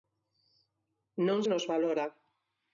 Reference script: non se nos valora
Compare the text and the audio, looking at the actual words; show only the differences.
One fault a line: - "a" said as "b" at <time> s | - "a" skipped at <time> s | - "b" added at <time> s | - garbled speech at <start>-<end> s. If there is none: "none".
- "se" skipped at 1.4 s